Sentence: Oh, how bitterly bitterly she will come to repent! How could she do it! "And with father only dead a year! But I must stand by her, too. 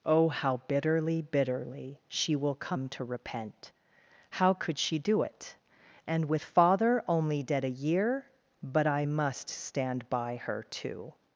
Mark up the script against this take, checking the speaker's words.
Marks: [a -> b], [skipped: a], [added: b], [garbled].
Oh, how bitterly bitterly she will come to repent! How could she do it! "And with father only dead a year! But I must stand by her, too.